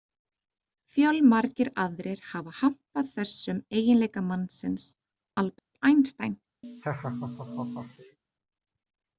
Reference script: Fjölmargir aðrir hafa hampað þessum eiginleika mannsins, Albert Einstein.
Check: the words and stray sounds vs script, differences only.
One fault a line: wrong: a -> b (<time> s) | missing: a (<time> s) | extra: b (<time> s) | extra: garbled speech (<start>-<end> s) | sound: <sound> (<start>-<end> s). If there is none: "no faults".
sound: dropout (5.6-5.7 s)
sound: laugh (6.6-8.2 s)